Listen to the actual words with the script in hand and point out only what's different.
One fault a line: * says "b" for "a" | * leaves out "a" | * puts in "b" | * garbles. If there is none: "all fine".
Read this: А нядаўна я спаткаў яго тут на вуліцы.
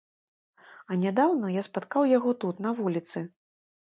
all fine